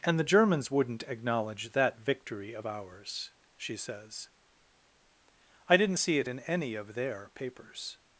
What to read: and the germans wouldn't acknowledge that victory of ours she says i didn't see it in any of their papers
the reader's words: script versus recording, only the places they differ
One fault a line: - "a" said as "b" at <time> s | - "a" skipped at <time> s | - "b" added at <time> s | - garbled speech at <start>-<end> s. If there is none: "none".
none